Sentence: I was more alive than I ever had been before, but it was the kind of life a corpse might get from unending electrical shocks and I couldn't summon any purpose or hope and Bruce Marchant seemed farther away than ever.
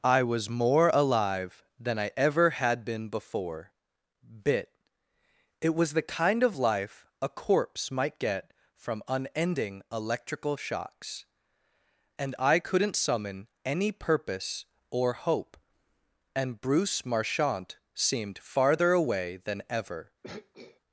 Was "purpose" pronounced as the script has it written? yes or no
yes